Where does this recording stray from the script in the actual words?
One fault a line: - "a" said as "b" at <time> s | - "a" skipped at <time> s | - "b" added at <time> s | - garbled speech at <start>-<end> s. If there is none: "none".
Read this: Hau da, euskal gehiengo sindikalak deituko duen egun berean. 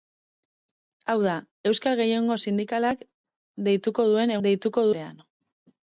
- "egun" said as "deituko" at 4.5 s